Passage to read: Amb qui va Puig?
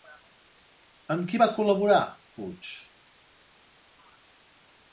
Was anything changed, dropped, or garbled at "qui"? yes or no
no